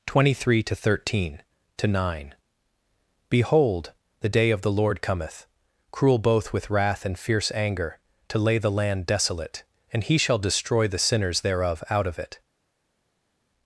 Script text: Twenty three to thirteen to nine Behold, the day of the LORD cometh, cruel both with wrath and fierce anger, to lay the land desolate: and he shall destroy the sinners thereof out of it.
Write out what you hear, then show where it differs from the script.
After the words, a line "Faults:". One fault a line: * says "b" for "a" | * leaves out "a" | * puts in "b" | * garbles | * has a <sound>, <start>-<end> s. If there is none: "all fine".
Twenty three to thirteen to nine Behold, the day of the LORD cometh, cruel both with wrath and fierce anger, to lay the land desolate: and he shall destroy the sinners thereof out of it.
Faults:
all fine